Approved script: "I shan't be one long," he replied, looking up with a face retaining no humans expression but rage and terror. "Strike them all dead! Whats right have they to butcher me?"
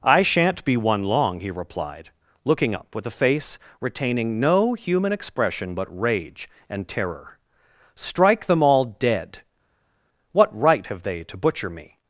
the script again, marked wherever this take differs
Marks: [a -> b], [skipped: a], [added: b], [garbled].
"I shan't be one long," he replied, looking up with a face retaining no [humans -> human] expression but rage and terror. "Strike them all dead! [Whats -> What] right have they to butcher me?"